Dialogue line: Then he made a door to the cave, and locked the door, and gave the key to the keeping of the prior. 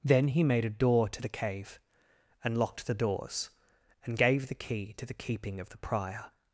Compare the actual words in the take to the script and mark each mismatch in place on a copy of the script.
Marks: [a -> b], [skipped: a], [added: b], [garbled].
Then he made a door to the cave, and locked the [door, -> doors] and gave the key to the keeping of the prior.